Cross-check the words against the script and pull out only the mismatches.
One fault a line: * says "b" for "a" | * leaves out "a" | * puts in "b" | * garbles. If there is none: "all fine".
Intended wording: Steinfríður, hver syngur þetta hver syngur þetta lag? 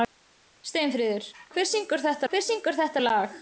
all fine